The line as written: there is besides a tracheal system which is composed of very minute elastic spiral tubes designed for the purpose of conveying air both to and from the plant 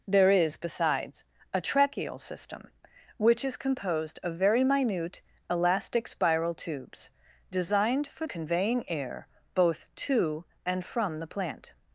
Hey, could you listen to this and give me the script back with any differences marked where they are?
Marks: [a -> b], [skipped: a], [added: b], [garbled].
there is besides a tracheal system which is composed of very minute elastic spiral tubes designed for [skipped: the purpose of] conveying air both to and from the plant